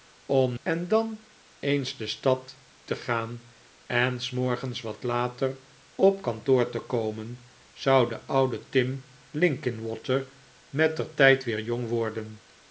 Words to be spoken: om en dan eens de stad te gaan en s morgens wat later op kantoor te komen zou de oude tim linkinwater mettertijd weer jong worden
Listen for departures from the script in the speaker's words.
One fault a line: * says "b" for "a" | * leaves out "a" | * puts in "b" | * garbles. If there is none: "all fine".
all fine